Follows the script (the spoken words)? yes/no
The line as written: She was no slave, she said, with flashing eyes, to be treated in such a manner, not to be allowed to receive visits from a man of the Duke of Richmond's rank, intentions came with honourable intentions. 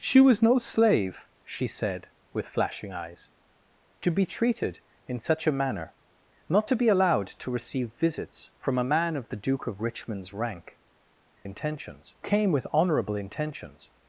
yes